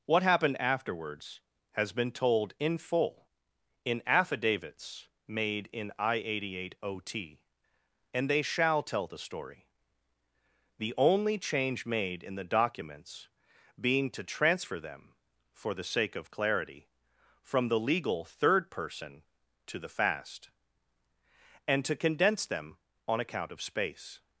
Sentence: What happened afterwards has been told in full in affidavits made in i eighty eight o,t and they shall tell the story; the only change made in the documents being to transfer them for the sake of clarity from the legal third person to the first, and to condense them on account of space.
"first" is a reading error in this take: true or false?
true